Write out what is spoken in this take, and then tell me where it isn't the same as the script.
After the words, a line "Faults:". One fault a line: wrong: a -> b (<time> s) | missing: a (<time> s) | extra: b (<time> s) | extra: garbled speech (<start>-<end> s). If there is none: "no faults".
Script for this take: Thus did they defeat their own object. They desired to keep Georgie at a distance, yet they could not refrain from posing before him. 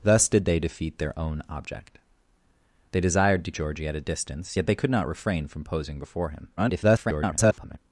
Thus did they defeat their own object. They desired to Georgie at a distance, yet they could not refrain from posing before him. [garbled]
Faults:
missing: keep (3.5 s)
extra: garbled speech (6.6-7.8 s)